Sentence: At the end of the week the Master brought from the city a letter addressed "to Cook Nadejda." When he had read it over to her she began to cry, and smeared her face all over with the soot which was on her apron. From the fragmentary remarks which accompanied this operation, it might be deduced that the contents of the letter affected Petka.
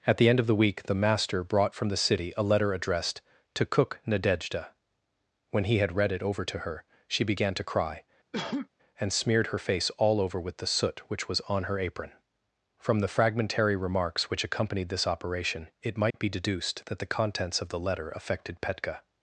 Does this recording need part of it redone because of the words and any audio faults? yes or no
yes